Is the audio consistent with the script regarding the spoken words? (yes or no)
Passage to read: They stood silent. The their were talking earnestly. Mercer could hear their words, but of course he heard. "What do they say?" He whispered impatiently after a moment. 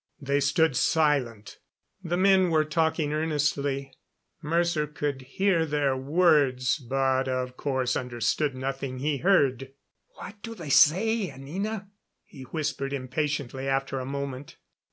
no